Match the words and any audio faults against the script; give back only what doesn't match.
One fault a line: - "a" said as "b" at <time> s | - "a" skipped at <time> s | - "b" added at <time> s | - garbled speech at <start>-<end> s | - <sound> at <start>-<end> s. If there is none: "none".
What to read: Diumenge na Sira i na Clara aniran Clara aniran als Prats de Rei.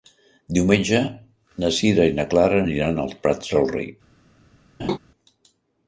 - "Clara aniran" skipped at 3.0 s
- laugh at 4.8-5.0 s